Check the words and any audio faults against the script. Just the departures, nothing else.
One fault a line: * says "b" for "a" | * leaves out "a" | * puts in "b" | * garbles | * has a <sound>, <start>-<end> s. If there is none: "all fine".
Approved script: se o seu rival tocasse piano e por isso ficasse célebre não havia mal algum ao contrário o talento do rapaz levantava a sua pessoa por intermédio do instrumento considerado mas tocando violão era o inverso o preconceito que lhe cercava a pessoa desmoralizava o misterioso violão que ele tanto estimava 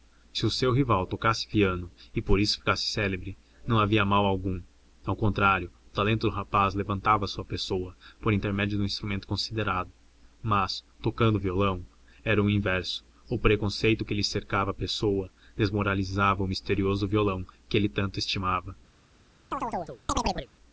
* has a chirp, 19.5-20.5 s